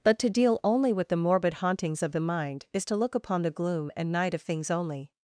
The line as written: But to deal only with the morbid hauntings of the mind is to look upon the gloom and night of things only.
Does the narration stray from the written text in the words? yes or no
no